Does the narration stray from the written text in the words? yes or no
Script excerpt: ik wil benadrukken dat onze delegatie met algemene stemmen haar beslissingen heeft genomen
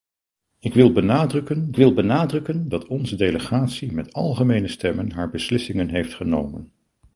yes